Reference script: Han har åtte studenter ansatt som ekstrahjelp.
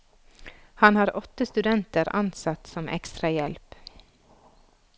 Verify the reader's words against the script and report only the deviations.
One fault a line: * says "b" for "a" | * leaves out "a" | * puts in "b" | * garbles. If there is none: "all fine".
all fine